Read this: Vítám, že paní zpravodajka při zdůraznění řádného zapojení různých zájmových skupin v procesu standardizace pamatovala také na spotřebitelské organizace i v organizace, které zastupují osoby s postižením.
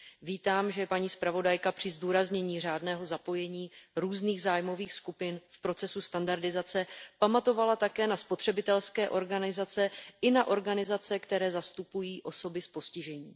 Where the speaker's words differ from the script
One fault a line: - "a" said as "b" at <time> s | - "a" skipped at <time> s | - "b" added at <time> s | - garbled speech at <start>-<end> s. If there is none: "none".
- "v" said as "na" at 10.3 s